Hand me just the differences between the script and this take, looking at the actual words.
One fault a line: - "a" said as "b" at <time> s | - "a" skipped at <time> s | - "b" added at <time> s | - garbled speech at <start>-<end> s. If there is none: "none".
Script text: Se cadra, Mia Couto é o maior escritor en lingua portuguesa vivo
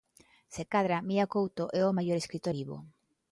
- "en lingua portuguesa" skipped at 2.5 s